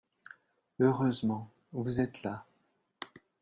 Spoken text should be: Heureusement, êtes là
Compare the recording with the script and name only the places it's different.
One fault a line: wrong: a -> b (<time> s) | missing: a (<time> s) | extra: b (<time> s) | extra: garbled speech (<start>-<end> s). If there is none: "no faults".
extra: vous (1.7 s)